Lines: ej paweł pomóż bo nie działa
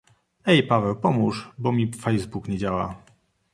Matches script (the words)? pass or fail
fail